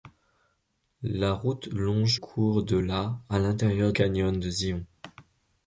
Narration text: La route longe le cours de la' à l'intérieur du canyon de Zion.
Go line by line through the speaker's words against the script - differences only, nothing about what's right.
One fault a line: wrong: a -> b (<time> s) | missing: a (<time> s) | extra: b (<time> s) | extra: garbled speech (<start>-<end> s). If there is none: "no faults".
missing: le (2.2 s)
missing: du (3.9 s)